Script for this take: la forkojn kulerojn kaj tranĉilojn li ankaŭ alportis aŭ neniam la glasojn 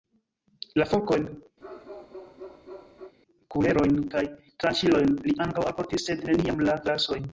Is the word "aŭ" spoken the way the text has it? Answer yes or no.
no